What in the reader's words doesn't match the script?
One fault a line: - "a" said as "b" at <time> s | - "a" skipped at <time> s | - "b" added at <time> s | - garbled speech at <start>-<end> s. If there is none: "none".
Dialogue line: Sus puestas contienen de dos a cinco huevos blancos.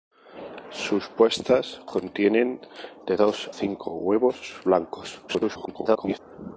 - "a" skipped at 3.5 s
- garbled speech at 5.3-6.2 s